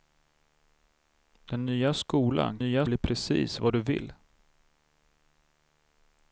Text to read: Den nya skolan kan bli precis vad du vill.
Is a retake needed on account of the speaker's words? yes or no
yes